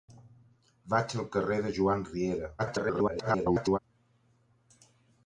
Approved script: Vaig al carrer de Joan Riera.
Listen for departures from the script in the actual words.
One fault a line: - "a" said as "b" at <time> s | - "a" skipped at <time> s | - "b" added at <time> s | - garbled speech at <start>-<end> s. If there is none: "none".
- garbled speech at 2.6-3.8 s